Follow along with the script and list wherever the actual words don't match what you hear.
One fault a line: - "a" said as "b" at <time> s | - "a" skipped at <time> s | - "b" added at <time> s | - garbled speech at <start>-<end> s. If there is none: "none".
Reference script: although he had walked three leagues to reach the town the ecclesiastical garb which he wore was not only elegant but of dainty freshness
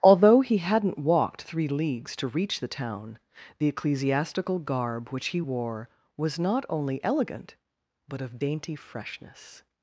- "had" said as "hadn't" at 0.6 s